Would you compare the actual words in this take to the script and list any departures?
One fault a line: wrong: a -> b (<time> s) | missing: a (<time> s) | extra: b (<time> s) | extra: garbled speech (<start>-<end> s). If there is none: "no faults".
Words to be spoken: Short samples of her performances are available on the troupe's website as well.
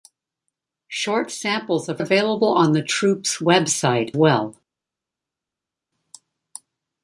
missing: her performances are (2.0 s)
missing: as (4.1 s)